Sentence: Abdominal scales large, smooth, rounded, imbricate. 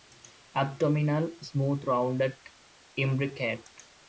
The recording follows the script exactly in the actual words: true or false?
false